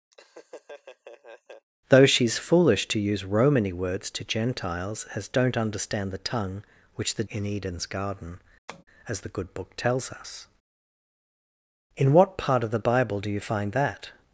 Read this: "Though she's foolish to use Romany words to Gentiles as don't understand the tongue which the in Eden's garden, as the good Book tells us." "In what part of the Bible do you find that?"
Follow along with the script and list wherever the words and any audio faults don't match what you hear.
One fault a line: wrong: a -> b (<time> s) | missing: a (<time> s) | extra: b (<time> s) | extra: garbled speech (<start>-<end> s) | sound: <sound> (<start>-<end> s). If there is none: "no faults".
sound: laugh (0.1-1.7 s)
sound: tap (8.7-8.8 s)